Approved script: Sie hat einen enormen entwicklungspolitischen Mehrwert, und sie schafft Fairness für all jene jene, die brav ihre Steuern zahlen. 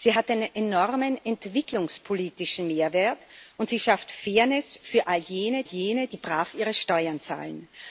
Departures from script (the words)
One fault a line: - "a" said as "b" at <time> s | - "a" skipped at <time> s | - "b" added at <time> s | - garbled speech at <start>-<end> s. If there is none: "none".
none